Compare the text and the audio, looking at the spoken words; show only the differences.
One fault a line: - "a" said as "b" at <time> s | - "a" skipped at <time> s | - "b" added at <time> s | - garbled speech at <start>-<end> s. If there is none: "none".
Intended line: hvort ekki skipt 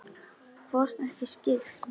none